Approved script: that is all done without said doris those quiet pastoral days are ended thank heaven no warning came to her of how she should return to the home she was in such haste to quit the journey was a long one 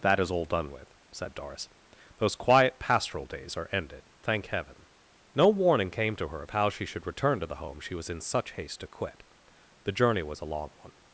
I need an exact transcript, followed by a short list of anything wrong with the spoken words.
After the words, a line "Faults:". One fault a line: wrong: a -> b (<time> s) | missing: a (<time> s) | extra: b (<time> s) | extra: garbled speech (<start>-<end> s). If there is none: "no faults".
that is all done with said doris those quiet pastoral days are ended thank heaven no warning came to her of how she should return to the home she was in such haste to quit the journey was a long one
Faults:
wrong: without -> with (0.7 s)